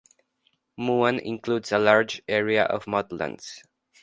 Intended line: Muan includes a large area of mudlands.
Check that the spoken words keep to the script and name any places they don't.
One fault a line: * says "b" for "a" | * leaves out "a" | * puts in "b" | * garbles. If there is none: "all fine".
all fine